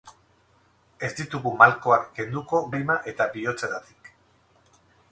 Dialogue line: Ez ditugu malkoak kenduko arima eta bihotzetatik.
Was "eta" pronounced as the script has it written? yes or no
yes